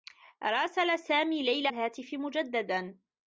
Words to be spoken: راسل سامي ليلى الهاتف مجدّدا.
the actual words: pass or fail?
pass